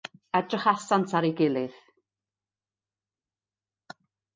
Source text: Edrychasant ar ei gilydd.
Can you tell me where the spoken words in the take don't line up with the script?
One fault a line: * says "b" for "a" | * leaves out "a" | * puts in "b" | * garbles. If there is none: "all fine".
all fine